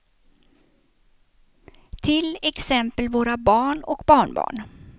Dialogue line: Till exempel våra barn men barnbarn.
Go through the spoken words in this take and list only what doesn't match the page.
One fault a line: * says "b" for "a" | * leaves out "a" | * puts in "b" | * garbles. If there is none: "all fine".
* says "och" for "men"